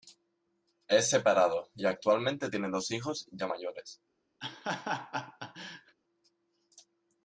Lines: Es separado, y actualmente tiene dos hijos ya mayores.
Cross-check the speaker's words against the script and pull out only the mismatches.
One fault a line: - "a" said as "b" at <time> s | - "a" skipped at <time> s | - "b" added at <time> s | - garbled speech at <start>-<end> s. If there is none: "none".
none